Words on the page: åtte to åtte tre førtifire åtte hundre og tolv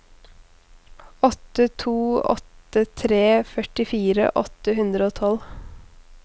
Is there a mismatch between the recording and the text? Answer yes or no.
no